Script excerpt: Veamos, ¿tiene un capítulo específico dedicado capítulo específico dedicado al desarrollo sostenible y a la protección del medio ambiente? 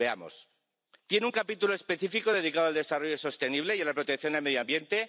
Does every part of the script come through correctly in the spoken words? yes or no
no